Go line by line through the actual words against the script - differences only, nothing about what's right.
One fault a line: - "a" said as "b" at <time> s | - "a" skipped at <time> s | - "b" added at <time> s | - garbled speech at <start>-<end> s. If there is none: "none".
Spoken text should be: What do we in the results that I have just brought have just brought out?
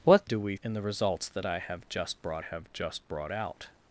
none